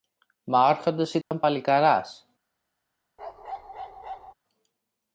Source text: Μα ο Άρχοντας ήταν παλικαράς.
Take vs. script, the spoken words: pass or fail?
pass